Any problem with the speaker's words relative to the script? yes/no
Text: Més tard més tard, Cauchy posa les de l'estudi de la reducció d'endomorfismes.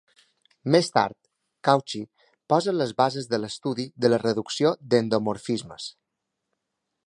yes